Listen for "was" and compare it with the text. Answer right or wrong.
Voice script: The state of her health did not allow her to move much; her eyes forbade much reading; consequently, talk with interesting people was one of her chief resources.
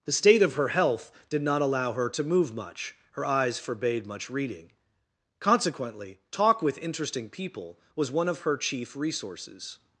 right